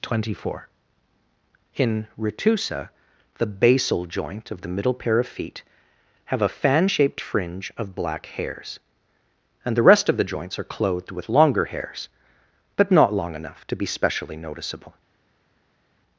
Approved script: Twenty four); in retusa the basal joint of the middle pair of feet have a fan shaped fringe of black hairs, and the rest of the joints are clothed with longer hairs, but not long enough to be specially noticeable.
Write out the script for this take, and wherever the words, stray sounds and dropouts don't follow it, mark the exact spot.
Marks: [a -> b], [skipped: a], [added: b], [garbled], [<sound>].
Twenty four); in retusa the basal joint of the middle pair of feet have a fan shaped fringe of black hairs, and the rest of the joints are clothed with longer hairs, but not long enough to be specially noticeable.